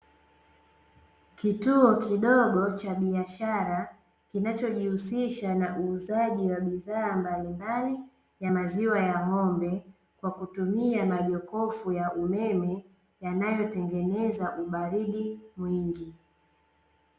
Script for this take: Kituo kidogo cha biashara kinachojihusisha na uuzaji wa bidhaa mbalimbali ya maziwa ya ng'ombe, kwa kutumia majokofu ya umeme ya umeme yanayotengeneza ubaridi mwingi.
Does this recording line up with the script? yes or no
no